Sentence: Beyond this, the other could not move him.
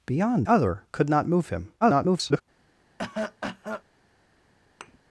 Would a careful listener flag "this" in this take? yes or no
yes